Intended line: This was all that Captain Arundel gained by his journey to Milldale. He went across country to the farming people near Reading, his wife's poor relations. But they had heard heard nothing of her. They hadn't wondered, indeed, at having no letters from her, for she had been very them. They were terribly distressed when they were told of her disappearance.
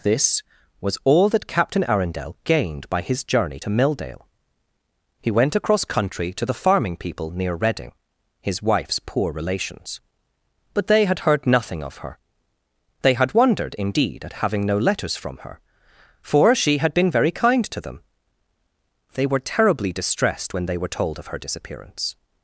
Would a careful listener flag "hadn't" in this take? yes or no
yes